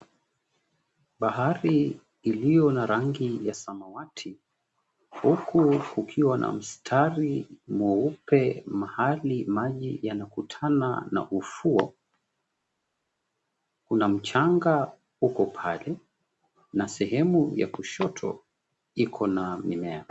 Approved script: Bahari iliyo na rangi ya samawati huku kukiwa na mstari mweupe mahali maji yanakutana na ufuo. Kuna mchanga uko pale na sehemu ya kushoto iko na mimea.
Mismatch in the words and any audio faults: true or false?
false